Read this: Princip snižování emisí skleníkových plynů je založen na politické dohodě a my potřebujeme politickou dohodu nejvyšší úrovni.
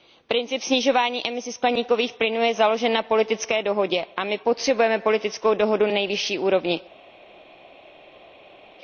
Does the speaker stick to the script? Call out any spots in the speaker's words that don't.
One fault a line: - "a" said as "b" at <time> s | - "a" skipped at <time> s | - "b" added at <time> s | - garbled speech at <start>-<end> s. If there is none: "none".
none